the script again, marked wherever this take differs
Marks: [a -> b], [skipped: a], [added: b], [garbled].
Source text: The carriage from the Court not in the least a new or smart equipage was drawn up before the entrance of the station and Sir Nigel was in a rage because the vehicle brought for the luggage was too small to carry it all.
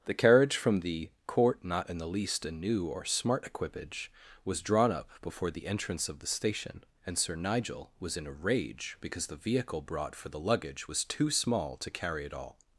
The carriage from the Court not in the least a new or smart equipage was drawn up before the entrance of the station and Sir Nigel was in a rage because the vehicle brought for the luggage was too small to carry it all.